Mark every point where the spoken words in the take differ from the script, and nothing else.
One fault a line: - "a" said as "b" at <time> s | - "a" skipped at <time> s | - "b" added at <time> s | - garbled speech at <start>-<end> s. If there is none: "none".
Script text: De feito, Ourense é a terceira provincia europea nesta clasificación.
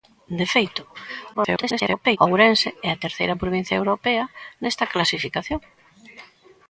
- garbled speech at 1.3-2.2 s